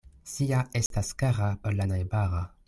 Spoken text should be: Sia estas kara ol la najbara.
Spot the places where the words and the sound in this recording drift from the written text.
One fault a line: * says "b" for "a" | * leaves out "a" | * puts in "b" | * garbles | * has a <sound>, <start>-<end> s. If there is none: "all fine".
* has a dropout, 0.9-0.9 s